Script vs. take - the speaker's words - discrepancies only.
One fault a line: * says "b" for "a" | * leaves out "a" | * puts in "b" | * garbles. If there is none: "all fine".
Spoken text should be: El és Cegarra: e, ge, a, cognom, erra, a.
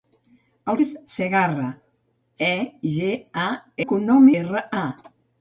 all fine